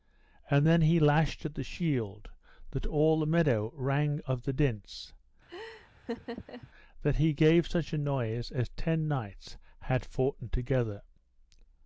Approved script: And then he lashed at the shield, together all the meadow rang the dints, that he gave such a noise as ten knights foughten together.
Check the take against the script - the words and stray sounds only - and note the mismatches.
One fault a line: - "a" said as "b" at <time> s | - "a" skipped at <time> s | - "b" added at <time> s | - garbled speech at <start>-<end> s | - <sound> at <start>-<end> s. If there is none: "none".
- "together" said as "that" at 2.7 s
- "of" added at 4.2 s
- laugh at 5.5-6.7 s
- "had" added at 9.8 s